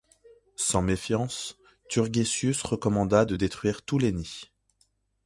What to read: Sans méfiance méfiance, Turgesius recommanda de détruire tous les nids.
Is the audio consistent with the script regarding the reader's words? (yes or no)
no